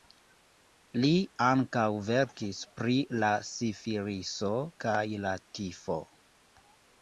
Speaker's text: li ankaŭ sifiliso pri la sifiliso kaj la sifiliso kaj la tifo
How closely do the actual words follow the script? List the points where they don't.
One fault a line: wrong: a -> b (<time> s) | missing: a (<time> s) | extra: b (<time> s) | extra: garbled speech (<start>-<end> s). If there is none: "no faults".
wrong: sifiliso -> verkis (2.1 s)
missing: sifiliso kaj la (5.4 s)